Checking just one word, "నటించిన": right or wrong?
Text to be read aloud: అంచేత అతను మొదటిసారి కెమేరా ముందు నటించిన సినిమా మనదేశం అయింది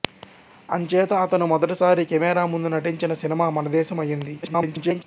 right